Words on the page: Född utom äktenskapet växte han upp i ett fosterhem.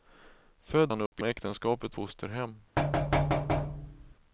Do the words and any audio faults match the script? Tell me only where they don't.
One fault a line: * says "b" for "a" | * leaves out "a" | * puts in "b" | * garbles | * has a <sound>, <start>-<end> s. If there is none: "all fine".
* leaves out "utom äktenskapet växte"
* has a dropout, 1.1-1.1 s
* says "äktenskapet" for "ett"
* has a thud, 2.8-4.1 s